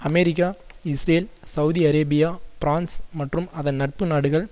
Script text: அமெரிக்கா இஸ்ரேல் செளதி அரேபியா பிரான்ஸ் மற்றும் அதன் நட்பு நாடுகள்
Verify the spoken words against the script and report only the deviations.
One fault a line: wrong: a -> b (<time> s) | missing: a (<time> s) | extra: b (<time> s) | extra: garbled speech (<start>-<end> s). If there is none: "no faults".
no faults